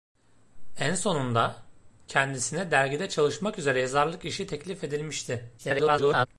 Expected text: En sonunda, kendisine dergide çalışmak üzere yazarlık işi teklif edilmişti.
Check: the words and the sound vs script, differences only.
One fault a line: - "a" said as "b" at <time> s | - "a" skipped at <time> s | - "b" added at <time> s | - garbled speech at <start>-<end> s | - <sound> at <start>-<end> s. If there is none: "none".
- garbled speech at 5.6-6.3 s